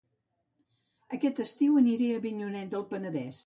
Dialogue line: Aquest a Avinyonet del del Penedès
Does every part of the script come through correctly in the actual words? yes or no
no